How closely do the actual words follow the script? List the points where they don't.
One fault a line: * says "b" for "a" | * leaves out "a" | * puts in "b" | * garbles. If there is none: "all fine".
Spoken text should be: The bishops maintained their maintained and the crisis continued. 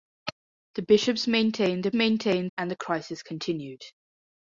all fine